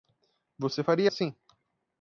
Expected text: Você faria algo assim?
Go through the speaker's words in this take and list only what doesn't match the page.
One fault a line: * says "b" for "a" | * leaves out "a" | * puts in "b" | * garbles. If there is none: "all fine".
* leaves out "algo"